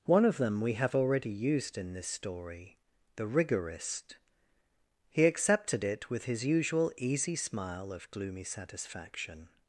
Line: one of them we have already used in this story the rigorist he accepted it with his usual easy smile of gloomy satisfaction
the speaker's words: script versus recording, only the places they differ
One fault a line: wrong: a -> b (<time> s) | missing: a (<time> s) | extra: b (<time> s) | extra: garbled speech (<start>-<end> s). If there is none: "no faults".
no faults